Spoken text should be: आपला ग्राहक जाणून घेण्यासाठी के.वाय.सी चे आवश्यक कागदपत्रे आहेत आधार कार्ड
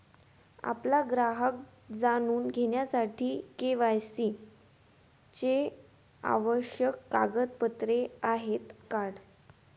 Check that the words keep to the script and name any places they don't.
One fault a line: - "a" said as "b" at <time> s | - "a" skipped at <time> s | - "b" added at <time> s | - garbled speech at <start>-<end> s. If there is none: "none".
- "आधार" skipped at 8.7 s